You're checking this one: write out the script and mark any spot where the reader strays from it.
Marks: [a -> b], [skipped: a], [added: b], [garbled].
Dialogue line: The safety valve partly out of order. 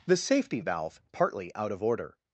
The safety valve partly out of order.